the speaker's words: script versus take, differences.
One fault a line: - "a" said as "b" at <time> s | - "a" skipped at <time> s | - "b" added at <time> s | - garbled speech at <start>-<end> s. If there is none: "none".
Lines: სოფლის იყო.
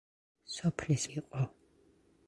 none